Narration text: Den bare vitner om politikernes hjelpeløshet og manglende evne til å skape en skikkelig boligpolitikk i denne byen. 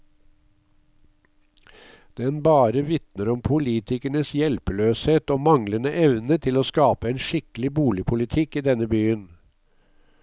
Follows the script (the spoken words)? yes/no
yes